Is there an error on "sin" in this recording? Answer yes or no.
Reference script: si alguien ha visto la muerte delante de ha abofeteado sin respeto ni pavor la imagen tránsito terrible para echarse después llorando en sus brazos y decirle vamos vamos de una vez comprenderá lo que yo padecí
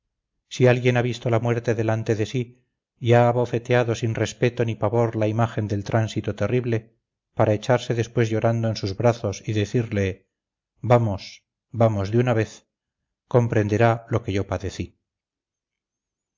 no